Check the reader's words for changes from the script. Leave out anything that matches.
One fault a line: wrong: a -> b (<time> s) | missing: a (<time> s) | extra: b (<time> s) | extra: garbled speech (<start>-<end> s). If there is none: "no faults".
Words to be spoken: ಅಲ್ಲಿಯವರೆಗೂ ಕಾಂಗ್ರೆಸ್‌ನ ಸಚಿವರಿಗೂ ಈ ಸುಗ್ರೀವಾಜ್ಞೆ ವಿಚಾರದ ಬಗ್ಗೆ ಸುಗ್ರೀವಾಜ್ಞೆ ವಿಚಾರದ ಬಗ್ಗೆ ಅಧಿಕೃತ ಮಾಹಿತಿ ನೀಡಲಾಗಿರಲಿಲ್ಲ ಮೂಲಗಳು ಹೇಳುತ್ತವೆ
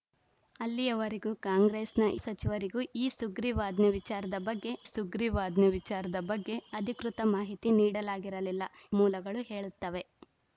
no faults